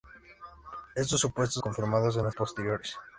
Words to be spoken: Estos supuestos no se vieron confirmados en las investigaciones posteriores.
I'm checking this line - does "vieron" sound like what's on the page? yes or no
no